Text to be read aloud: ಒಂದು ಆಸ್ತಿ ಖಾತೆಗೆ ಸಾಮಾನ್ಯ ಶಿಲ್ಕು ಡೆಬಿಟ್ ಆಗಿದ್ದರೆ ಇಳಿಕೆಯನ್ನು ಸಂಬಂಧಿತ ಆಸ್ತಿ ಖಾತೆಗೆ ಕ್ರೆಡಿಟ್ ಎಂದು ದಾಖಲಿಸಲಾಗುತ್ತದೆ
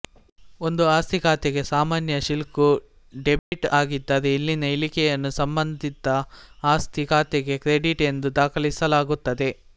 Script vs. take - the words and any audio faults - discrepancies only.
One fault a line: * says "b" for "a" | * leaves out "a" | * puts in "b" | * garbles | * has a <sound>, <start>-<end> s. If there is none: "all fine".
* has a dropout, 3.4-3.5 s
* puts in "ಇಲ್ಲಿನ"